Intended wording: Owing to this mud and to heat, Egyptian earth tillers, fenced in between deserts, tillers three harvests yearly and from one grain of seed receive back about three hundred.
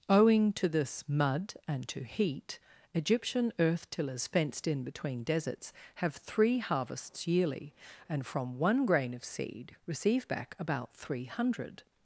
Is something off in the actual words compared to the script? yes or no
yes